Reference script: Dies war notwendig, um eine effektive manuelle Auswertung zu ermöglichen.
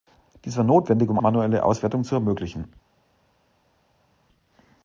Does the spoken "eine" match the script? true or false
false